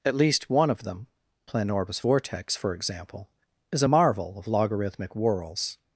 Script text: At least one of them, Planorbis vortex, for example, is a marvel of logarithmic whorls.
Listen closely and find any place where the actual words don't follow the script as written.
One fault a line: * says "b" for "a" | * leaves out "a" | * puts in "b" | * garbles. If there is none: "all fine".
all fine